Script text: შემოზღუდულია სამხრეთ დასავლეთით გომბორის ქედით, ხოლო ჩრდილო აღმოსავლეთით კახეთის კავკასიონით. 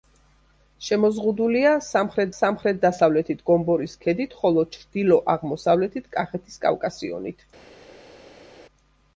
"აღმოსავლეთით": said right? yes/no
yes